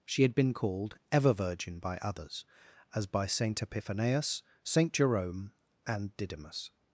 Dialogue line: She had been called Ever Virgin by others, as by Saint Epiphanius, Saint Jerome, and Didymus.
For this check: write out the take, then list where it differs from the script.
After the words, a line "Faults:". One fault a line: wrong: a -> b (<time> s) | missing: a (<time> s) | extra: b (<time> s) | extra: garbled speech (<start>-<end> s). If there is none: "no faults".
She had been called Ever Virgin by others, as by Saint Epiphanius, Saint Jerome, and Didymus.
Faults:
no faults